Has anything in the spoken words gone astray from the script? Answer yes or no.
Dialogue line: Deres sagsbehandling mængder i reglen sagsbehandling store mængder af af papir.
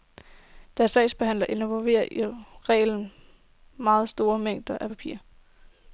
yes